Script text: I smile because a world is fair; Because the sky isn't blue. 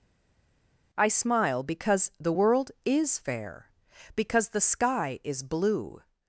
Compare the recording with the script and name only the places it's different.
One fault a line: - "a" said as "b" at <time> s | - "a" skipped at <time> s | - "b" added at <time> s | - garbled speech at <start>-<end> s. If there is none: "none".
- "a" said as "the" at 2.2 s
- "isn't" said as "is" at 5.2 s